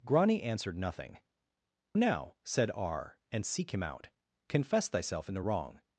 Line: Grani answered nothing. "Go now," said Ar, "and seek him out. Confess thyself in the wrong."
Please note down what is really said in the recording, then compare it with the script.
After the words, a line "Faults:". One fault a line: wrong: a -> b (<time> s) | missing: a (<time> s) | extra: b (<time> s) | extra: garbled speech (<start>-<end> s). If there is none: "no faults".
Grani answered nothing. "Now," said Ar, "and seek him out. Confess thyself in the wrong."
Faults:
missing: Go (1.2 s)